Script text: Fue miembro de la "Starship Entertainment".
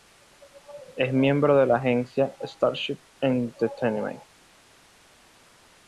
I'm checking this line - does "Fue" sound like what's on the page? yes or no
no